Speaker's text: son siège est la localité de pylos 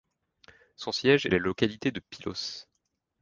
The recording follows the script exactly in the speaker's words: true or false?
true